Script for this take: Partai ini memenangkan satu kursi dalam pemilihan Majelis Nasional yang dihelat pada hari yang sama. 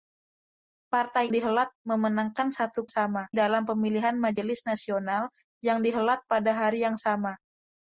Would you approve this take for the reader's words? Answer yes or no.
no